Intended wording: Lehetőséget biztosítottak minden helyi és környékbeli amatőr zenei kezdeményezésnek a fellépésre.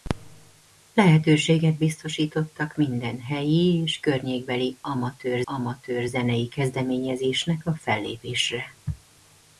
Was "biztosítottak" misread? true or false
false